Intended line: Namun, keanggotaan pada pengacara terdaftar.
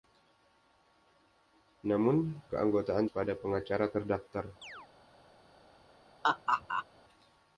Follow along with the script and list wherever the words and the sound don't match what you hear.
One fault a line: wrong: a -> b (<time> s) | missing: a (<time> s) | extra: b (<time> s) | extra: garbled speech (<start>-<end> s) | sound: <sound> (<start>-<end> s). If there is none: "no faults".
sound: chirp (4.6-4.9 s)
sound: laugh (6.2-6.9 s)